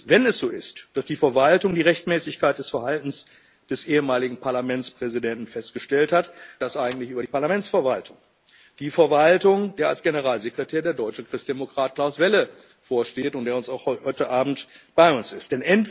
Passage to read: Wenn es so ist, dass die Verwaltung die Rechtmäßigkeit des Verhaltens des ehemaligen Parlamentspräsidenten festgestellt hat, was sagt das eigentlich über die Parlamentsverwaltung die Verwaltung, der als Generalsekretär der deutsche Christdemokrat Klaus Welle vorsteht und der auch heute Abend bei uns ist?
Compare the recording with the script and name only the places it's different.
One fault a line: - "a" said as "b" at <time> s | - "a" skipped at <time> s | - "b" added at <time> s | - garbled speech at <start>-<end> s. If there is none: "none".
- "was sagt" skipped at 6.3 s